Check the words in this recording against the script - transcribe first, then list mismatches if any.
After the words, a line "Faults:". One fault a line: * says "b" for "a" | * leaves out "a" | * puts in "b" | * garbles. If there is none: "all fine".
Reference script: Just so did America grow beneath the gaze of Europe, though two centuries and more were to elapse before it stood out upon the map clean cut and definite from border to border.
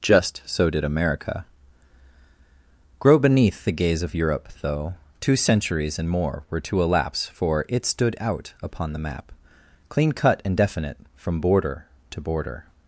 Just so did America grow beneath the gaze of Europe, though two centuries and more were to elapse for it stood out upon the map clean cut and definite from border to border.
Faults:
* says "for" for "before"